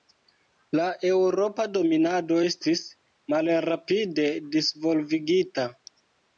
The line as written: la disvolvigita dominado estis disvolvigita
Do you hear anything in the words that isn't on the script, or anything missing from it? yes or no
yes